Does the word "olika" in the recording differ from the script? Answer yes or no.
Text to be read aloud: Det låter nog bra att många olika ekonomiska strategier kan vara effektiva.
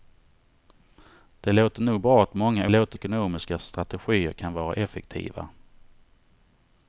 yes